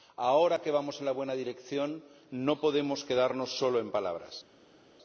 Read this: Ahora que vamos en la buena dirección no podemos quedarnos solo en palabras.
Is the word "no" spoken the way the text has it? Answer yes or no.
yes